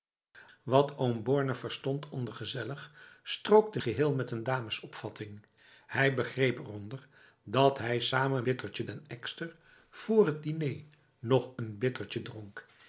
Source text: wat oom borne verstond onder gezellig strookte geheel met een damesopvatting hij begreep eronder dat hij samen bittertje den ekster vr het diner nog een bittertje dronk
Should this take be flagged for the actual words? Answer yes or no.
no